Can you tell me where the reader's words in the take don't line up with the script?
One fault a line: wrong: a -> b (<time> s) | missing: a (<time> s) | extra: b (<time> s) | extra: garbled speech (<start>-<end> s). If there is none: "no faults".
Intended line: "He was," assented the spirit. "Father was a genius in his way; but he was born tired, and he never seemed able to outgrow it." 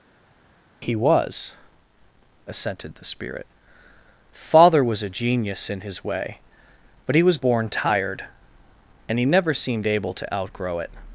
no faults